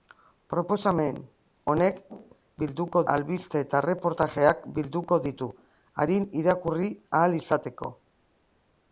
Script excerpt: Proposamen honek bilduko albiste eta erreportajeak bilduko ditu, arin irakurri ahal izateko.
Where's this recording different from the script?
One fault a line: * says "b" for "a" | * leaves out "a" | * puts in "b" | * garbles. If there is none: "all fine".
all fine